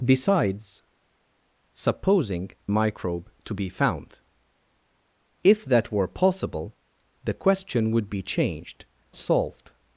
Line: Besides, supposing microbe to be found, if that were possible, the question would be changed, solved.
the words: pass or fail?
pass